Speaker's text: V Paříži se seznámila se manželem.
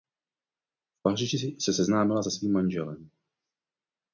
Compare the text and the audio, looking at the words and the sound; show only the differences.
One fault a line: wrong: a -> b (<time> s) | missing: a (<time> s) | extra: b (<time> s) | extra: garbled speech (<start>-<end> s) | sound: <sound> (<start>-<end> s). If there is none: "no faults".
extra: svým (2.3 s)